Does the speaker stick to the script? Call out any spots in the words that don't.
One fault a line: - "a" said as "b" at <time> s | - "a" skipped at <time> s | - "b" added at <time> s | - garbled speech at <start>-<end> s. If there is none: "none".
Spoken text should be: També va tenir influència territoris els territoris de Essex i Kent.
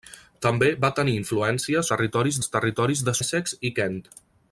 none